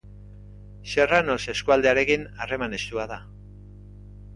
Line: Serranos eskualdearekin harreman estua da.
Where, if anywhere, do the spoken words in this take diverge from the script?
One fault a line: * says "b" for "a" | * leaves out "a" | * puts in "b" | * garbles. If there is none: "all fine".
all fine